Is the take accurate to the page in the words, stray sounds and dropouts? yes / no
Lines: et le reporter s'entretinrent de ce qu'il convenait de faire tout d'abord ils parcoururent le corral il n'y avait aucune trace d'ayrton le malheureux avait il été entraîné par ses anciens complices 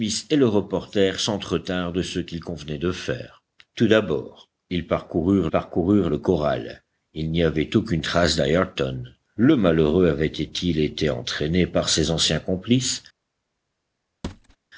no